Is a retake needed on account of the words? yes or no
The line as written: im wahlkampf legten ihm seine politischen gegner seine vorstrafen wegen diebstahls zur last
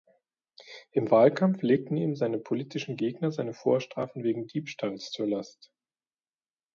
no